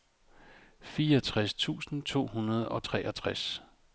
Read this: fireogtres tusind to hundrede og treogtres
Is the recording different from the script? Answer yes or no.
no